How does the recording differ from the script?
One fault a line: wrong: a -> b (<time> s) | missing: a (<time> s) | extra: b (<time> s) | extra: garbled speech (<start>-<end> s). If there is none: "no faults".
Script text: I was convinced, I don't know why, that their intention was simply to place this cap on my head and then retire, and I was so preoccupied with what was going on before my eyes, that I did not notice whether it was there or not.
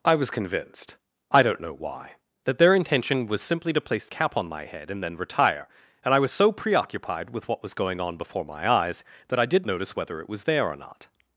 missing: this (4.1 s)
missing: not (9.6 s)